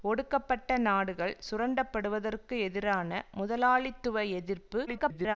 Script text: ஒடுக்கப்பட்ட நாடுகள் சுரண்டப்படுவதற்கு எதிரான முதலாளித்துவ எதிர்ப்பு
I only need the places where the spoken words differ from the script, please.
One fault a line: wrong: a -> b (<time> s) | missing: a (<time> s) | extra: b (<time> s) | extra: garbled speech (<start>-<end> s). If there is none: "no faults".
extra: garbled speech (4.9-5.4 s)